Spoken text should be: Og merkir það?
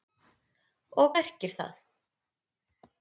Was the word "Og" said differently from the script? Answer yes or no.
no